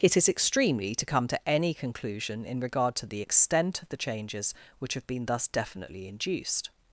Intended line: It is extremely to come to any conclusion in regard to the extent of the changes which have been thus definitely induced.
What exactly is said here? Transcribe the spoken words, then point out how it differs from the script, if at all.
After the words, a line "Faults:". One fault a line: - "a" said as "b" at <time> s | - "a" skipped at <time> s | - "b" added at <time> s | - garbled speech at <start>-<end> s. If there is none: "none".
It is extremely to come to any conclusion in regard to the extent of the changes which have been thus definitely induced.
Faults:
none